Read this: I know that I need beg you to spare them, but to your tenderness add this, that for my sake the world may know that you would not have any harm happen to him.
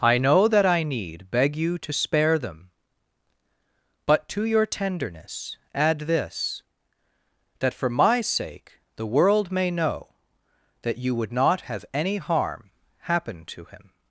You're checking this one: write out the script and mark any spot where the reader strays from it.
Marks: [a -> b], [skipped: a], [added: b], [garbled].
I know that I need beg you to spare them, but to your tenderness add this, that for my sake the world may know that you would not have any harm happen to him.